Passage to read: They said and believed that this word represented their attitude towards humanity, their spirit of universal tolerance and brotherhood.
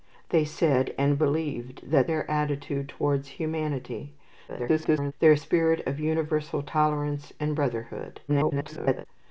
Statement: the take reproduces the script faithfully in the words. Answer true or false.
false